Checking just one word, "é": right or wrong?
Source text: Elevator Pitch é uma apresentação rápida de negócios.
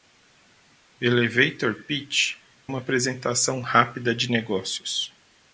wrong